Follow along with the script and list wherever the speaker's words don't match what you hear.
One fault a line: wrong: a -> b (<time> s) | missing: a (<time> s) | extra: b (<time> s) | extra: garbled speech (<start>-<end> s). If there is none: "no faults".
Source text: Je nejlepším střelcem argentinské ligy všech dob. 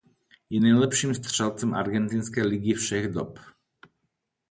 no faults